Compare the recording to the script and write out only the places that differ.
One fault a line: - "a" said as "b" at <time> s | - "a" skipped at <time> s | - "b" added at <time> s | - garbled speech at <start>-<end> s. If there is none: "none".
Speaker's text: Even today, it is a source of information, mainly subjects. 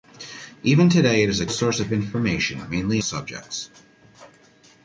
none